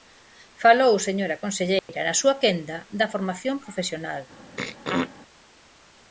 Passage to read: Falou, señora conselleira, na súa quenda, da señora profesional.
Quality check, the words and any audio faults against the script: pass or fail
fail